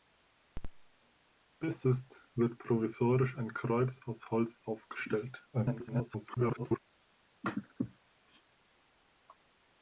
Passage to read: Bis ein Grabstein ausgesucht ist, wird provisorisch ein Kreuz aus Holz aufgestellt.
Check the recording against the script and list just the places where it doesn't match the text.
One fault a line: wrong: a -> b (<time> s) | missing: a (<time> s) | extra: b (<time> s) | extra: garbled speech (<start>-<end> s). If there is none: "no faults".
missing: ein Grabstein ausgesucht (1.9 s)
extra: garbled speech (5.5-6.8 s)